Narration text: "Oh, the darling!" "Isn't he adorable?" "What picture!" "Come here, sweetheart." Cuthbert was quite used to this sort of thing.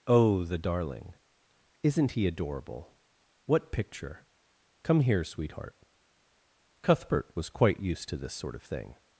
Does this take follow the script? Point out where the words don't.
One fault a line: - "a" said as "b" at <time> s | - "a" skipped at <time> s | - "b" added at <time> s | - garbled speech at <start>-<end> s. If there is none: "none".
none